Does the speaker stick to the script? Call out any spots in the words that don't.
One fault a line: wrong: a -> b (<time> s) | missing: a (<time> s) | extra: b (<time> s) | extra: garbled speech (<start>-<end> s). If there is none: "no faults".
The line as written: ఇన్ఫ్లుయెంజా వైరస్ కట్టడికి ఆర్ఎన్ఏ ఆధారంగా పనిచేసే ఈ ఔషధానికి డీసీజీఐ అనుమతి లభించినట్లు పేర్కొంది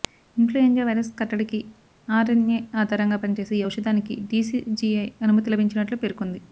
no faults